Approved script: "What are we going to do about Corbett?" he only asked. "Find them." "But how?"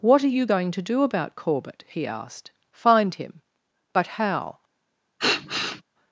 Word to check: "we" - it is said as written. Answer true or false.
false